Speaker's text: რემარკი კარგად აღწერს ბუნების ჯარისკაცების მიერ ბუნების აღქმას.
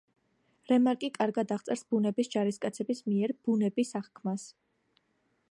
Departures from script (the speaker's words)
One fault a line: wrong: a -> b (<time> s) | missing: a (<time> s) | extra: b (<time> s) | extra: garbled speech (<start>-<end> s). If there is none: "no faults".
no faults